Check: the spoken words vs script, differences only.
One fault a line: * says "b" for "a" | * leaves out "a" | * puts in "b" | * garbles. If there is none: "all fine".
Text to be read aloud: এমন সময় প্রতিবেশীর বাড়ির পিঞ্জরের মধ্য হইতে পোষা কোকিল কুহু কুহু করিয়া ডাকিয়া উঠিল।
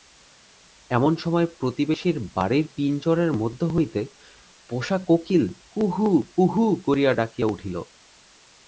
all fine